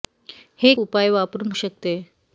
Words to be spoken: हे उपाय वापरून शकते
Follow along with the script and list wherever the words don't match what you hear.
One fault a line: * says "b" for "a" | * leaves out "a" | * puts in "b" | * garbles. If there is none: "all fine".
all fine